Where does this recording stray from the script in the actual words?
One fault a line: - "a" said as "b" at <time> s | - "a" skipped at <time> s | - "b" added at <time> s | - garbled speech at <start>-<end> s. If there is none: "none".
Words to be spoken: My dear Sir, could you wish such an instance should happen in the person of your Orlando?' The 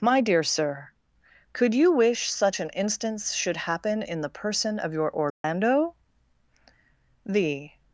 none